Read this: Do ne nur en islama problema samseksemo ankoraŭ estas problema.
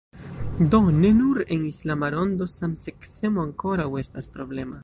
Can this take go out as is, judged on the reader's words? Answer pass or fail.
fail